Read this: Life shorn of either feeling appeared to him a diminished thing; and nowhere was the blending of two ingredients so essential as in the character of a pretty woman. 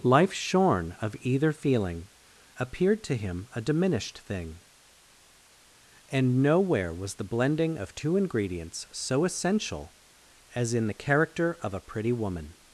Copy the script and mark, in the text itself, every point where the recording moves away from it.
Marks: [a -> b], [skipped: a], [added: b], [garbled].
Life shorn of either feeling appeared to him a diminished thing; and nowhere was the blending of two ingredients so essential as in the character of a pretty woman.